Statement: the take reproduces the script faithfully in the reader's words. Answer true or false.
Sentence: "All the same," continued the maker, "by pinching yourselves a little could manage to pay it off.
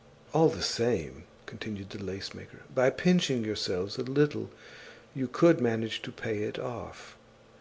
false